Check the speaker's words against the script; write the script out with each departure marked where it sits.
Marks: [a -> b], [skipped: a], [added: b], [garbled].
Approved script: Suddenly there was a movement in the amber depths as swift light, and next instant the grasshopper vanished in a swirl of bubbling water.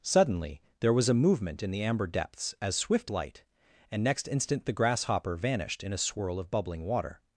Suddenly there was a movement in the amber depths as swift light, and next instant the grasshopper vanished in a swirl of bubbling water.